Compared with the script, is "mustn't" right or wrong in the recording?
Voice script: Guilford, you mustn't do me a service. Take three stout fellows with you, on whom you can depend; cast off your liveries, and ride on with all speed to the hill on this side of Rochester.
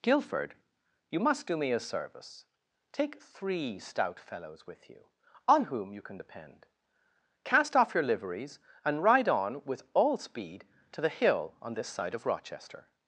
wrong